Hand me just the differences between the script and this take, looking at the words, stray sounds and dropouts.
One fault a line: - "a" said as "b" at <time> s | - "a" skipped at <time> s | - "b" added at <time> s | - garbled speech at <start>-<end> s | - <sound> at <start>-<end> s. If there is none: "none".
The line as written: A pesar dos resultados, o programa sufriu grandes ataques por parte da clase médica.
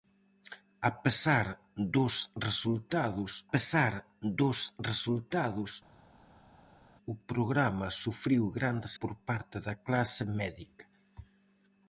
- "pesar dos resultados" added at 3.5 s
- "ataques" skipped at 8.9 s